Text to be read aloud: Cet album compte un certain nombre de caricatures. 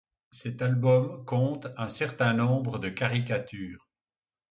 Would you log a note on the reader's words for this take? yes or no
no